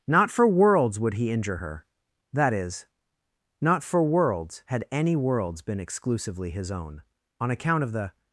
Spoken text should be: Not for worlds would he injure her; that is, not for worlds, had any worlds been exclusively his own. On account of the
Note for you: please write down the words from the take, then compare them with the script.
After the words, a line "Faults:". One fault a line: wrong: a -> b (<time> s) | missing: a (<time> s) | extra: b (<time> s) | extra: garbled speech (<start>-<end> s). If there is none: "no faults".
Not for worlds would he injure her; that is, not for worlds, had any worlds been exclusively his own. On account of the
Faults:
no faults